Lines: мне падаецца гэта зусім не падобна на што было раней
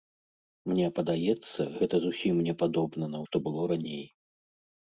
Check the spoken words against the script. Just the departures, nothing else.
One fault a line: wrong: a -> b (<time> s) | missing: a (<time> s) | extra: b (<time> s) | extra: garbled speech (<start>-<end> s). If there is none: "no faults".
no faults